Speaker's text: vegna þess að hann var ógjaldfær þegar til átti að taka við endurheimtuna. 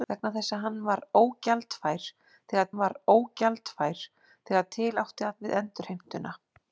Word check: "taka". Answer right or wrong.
wrong